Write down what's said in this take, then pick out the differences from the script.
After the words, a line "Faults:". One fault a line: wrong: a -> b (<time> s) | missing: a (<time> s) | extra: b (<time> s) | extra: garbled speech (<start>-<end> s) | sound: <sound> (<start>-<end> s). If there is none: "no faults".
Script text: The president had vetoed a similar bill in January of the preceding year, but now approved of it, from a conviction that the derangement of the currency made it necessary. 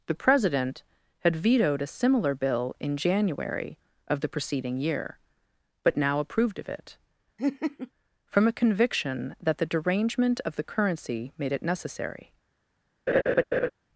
The president had vetoed a similar bill in January of the preceding year, but now approved of it, from a conviction that the derangement of the currency made it necessary.
Faults:
sound: laugh (7.4-7.9 s)
sound: laugh (13.1-13.7 s)